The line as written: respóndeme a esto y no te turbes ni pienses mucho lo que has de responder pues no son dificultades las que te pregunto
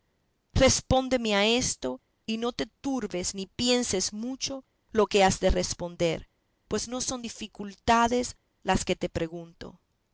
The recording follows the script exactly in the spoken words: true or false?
true